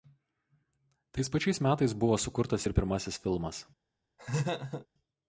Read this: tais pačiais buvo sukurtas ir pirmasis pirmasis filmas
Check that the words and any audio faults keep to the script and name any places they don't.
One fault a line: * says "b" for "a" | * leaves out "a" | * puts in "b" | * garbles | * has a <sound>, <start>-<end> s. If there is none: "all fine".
* puts in "metais"
* leaves out "pirmasis"
* has a laugh, 4.2-4.9 s